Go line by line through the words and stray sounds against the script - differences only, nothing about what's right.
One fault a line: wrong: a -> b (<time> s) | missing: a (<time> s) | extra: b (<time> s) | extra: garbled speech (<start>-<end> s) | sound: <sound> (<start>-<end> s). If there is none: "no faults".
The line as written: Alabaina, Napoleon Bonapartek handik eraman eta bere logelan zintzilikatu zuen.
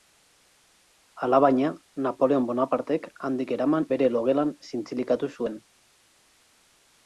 missing: eta (3.9 s)